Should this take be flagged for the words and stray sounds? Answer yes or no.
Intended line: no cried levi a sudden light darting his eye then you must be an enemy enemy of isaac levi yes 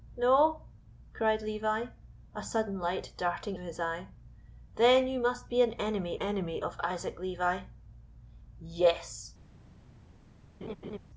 yes